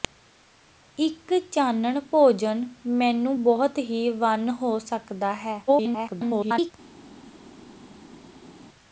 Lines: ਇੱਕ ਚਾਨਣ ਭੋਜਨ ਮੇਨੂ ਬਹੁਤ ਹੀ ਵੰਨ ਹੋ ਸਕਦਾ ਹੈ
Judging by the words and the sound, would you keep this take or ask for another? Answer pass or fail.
fail